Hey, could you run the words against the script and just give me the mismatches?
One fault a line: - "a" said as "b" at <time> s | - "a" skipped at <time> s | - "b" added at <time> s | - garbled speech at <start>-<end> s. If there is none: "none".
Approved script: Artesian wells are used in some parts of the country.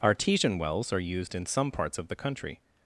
none